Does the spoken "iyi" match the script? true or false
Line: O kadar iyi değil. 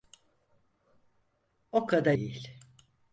false